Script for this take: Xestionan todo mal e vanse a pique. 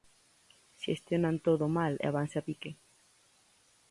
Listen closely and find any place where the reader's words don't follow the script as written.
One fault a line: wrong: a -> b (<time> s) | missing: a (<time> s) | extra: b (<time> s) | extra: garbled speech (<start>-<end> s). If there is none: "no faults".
no faults